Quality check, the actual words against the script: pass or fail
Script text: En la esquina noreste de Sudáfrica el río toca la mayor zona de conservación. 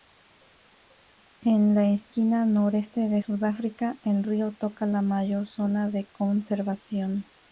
pass